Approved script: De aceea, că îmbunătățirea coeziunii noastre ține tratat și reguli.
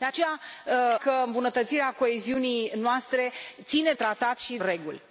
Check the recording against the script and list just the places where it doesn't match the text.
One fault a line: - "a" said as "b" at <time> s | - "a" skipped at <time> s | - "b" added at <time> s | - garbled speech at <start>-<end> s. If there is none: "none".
none